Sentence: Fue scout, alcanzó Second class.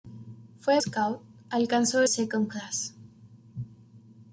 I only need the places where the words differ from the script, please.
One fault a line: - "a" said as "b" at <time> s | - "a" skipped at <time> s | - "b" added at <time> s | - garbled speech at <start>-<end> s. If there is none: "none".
none